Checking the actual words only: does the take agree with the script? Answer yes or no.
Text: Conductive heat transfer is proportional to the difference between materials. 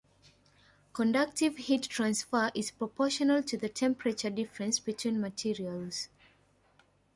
no